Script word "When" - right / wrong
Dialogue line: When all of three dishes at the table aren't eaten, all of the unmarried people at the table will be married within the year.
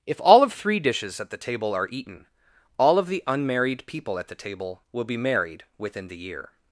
wrong